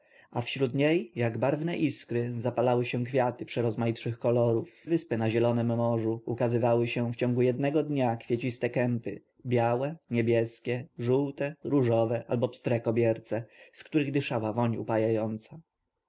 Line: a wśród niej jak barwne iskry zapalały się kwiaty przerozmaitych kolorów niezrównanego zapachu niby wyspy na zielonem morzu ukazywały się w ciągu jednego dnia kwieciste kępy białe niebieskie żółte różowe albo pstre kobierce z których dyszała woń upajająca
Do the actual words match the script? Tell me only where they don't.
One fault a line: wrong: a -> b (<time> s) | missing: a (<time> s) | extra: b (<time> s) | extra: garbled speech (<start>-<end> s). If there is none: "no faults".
missing: niezrównanego zapachu niby (4.9 s)